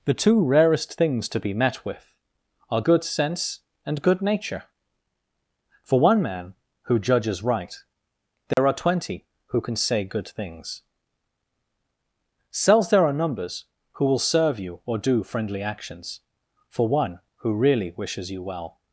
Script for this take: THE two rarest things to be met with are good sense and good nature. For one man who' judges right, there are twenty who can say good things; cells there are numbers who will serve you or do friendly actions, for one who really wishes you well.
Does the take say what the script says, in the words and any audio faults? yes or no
no